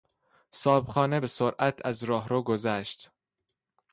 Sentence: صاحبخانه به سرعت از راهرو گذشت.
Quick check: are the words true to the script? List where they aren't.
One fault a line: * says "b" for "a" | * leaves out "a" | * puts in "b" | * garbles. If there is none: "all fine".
all fine